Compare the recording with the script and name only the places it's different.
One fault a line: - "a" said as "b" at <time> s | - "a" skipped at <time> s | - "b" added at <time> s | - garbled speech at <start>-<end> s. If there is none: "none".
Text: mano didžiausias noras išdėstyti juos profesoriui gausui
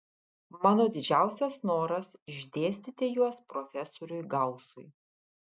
none